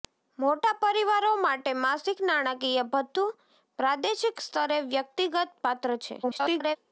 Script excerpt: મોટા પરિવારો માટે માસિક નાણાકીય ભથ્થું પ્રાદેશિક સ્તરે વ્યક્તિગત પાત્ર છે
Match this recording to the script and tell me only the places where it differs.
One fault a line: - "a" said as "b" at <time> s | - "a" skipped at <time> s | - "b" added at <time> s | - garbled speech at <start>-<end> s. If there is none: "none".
- garbled speech at 6.2-6.8 s